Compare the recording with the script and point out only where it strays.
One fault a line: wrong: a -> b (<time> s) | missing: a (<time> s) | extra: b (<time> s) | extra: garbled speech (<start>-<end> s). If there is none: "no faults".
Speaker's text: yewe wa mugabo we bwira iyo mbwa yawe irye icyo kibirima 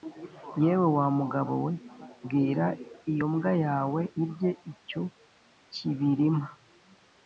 no faults